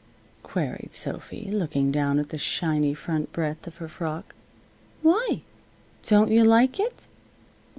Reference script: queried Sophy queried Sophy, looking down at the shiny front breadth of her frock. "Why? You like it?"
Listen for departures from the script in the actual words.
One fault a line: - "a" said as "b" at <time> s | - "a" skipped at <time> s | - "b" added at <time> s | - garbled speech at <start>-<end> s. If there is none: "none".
- "queried Sophy" skipped at 1.5 s
- "Don't" added at 6.0 s